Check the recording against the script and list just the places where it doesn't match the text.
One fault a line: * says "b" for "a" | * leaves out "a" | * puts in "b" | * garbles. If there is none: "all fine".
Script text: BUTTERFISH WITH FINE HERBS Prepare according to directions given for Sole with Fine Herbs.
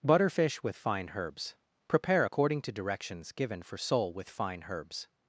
all fine